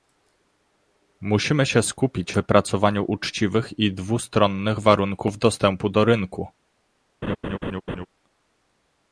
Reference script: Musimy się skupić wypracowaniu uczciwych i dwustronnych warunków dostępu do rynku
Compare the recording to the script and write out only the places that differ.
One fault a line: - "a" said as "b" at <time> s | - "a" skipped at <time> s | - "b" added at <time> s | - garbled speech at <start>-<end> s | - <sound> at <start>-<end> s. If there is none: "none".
- laugh at 7.2-8.1 s